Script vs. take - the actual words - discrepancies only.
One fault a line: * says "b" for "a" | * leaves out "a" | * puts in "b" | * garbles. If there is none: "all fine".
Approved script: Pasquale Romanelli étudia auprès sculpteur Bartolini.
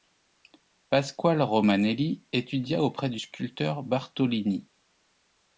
* puts in "du"